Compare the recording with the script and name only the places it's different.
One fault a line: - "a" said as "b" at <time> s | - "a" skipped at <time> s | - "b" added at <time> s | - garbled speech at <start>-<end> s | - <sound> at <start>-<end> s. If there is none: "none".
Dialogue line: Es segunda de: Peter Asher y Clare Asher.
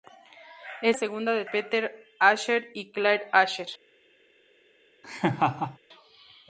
- laugh at 5.0-5.8 s